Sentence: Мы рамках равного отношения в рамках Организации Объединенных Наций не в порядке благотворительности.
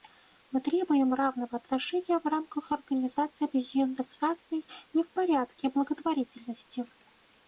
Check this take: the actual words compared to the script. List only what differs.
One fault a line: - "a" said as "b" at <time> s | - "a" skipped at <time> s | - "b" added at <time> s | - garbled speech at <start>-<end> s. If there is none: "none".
- "рамках" said as "требуем" at 0.6 s